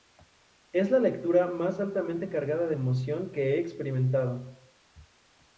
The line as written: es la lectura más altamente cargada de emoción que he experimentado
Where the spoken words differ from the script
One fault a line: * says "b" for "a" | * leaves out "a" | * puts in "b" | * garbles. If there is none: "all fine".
all fine